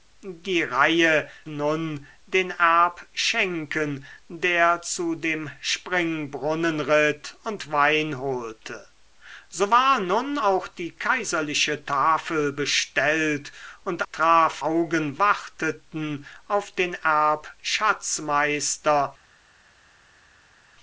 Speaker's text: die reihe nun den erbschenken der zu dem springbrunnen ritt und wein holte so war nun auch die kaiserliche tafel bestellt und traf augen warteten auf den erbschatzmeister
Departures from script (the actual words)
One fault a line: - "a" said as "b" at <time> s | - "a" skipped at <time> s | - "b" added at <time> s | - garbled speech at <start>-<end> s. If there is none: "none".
none